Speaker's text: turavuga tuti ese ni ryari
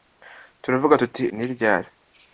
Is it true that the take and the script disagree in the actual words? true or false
true